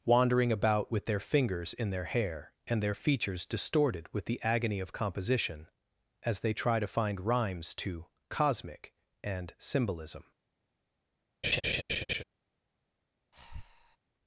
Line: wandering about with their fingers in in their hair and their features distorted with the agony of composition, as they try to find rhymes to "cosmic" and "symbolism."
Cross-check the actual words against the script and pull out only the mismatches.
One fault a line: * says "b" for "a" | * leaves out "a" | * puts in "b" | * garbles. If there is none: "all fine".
* leaves out "in"